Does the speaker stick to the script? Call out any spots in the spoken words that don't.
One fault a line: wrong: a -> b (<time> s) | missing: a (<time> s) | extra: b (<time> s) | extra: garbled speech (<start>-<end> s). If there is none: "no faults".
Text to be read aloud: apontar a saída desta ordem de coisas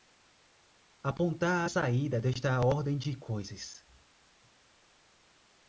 no faults